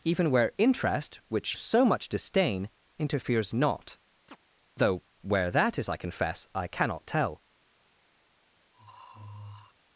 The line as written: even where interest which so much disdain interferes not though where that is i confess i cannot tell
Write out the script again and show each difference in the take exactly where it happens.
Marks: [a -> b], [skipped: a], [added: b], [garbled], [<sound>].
even where interest which so much disdain interferes not [chirp] though where that is i confess i cannot tell [throat clearing]